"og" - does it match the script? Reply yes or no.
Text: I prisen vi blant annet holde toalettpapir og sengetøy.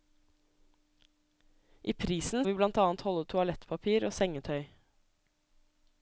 yes